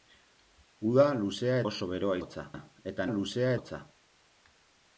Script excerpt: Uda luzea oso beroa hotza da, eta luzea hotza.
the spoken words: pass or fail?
pass